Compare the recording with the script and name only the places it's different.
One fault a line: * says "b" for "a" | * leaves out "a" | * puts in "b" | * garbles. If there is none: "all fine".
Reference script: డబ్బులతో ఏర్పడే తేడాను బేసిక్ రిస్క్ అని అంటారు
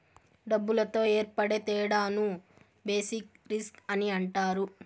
all fine